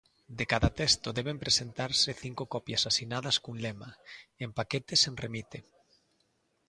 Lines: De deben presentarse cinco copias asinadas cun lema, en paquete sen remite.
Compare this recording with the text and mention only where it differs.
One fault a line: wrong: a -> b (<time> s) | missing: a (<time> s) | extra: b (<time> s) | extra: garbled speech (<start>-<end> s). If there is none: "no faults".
extra: cada texto (0.5 s)